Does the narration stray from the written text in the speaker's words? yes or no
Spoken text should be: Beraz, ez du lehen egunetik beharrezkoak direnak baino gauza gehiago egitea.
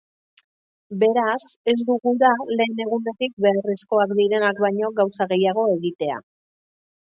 yes